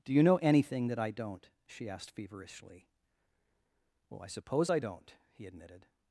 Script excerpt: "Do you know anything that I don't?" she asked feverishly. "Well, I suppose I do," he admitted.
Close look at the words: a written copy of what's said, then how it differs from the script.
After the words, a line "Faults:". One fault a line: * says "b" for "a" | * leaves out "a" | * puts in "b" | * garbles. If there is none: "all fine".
"Do you know anything that I don't?" she asked feverishly. "Well, I suppose I don't," he admitted.
Faults:
* says "don't" for "do"